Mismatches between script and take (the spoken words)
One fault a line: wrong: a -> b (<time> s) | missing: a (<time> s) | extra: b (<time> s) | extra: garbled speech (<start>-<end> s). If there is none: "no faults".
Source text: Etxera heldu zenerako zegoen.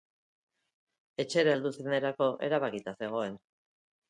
extra: erabakita (2.5 s)